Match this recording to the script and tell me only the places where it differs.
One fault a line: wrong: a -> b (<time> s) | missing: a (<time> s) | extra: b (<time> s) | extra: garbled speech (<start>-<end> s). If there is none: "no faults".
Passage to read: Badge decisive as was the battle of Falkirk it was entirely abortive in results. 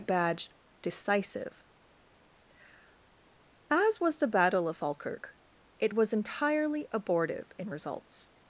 no faults